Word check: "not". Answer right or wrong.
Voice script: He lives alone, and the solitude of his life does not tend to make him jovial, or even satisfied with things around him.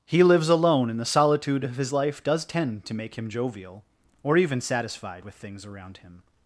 wrong